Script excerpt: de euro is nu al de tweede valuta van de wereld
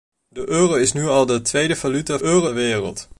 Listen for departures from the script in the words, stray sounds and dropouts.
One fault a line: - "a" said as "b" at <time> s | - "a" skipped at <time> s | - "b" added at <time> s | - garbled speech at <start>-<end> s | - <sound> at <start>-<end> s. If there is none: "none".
- "van" said as "euro" at 2.2 s